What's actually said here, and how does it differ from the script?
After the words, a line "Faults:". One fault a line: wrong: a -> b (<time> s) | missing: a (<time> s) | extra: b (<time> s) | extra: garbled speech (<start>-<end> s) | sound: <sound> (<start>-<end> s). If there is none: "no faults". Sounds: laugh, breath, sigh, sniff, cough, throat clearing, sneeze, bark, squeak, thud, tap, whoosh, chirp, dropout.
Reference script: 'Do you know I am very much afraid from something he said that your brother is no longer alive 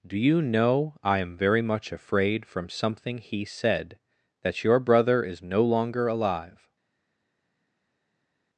'Do you know I am very much afraid from something he said that your brother is no longer alive
Faults:
no faults